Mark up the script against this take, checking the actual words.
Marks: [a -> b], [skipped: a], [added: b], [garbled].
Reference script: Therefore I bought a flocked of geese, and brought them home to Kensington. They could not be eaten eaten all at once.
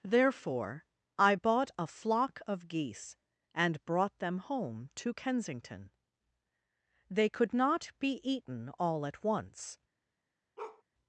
Therefore I bought a [flocked -> flock] of geese, and brought them home to Kensington. They could not be eaten [skipped: eaten] all at once.